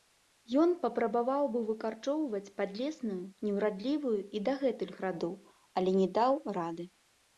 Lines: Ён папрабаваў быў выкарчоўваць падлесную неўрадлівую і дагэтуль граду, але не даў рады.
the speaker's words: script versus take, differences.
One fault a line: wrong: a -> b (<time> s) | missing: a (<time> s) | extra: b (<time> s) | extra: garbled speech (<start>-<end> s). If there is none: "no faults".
no faults